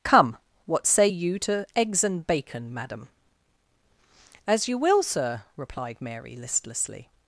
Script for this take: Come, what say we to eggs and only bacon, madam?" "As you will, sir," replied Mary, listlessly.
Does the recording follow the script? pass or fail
fail